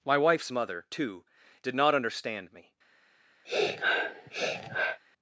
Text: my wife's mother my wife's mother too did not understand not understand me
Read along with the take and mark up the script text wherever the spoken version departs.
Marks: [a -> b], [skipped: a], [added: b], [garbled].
my wife's mother [skipped: my wife's mother] too did not understand [skipped: not understand] me